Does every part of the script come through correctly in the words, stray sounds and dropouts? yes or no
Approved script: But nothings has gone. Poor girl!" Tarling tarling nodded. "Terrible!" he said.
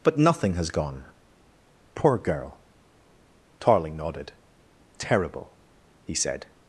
no